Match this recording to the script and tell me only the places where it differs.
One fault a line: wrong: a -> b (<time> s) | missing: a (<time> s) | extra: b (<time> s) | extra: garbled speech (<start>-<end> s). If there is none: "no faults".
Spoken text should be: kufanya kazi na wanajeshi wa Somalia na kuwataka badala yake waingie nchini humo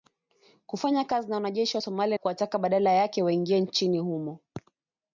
missing: na (2.2 s)